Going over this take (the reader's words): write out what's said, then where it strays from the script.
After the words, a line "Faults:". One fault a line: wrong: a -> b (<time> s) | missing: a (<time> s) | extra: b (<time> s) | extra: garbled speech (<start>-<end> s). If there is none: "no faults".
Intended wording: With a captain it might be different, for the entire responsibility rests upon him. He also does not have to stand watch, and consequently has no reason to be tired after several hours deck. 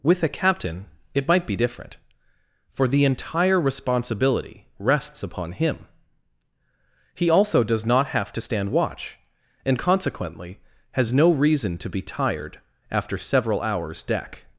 With a captain it might be different, for the entire responsibility rests upon him. He also does not have to stand watch, and consequently has no reason to be tired after several hours deck.
Faults:
no faults